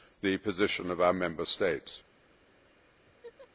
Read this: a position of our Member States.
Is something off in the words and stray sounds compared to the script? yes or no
yes